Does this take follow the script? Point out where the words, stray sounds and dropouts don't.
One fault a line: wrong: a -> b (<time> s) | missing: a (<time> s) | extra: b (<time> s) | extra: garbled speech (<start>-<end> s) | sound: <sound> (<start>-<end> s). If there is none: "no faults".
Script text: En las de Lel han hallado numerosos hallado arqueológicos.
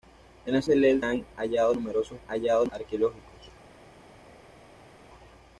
no faults